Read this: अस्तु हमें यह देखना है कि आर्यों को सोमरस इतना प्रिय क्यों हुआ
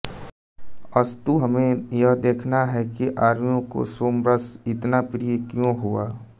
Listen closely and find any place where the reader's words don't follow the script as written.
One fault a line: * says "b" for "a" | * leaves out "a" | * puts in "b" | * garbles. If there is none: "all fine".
all fine